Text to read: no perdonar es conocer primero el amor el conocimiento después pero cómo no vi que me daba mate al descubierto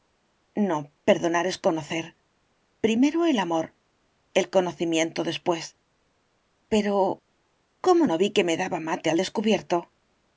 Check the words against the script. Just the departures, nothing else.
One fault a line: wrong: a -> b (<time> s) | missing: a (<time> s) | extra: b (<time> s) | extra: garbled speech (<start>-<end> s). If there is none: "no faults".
no faults